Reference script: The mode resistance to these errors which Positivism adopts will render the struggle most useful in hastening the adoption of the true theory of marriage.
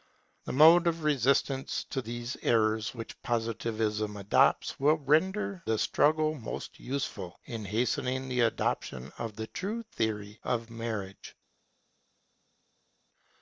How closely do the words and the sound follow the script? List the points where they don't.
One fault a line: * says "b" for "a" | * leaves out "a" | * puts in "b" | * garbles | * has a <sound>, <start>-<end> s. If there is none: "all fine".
* puts in "of"